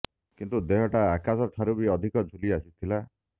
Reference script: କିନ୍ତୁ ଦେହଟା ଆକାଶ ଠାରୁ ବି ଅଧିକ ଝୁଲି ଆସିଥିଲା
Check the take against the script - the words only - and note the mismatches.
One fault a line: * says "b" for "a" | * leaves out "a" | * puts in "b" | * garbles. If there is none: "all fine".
all fine